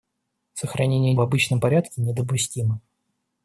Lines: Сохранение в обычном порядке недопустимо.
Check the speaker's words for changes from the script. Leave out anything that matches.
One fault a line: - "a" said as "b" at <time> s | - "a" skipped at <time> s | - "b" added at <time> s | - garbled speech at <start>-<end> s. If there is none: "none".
none